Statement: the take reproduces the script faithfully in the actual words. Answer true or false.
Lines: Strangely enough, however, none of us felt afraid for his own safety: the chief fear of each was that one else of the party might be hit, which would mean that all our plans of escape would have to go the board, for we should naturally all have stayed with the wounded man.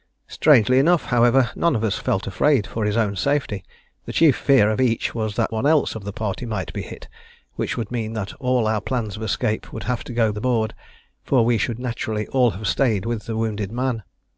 true